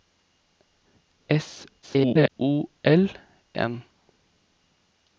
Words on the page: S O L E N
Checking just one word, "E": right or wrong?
wrong